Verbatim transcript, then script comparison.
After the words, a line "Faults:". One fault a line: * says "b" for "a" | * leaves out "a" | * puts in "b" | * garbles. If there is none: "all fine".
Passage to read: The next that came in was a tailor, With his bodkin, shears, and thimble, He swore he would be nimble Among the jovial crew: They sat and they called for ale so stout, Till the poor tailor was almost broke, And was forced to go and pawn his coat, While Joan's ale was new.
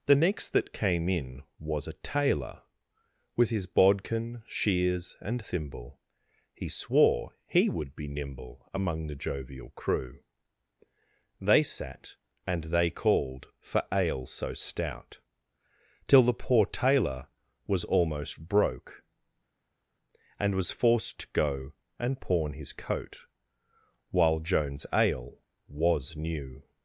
The next that came in was a tailor, With his bodkin, shears, and thimble, He swore he would be nimble Among the jovial crew: They sat and they called for ale so stout, Till the poor tailor was almost broke, And was forced to go and pawn his coat, While Joan's ale was new.
Faults:
all fine